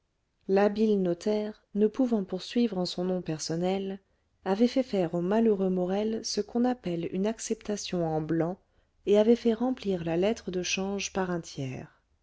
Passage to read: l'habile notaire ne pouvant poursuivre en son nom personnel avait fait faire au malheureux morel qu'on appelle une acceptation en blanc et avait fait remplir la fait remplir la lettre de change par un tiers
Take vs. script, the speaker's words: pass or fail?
fail